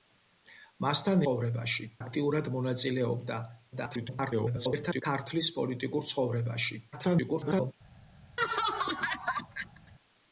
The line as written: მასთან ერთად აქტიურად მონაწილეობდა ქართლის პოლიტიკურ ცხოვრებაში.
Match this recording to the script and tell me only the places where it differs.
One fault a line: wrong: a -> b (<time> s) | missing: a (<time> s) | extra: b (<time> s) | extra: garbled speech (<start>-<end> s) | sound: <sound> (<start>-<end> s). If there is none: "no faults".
wrong: ერთად -> ცხოვრებაში (1.2 s)
extra: garbled speech (3.7-5.0 s)
extra: garbled speech (6.9-7.7 s)
sound: laugh (8.4-9.9 s)